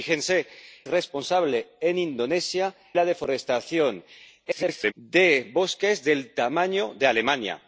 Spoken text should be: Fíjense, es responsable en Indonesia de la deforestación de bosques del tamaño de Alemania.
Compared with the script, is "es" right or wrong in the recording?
wrong